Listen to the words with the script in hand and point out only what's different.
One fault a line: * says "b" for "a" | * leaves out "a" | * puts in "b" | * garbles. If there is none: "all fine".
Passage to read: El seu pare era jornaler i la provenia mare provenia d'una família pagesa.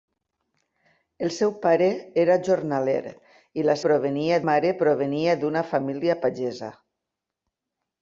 all fine